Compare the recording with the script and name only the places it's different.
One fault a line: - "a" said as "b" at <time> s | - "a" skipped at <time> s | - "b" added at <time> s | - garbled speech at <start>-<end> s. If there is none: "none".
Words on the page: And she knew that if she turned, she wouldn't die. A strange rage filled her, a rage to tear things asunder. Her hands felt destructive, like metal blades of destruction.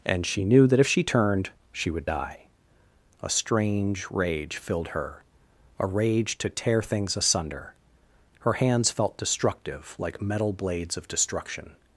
- "wouldn't" said as "would" at 1.9 s